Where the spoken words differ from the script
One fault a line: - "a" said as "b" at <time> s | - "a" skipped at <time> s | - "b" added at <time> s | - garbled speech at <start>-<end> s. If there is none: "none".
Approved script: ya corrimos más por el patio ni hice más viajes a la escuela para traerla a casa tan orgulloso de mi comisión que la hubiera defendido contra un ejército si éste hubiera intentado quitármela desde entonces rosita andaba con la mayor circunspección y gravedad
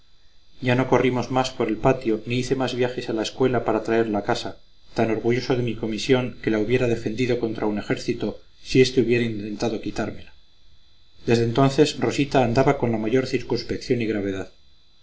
- "no" added at 0.7 s